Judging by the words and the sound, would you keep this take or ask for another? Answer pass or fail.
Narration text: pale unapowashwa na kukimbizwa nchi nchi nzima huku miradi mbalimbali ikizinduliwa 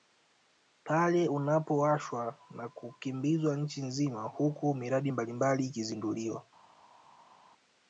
fail